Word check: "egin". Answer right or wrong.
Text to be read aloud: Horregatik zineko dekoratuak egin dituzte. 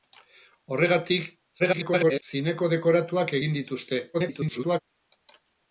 right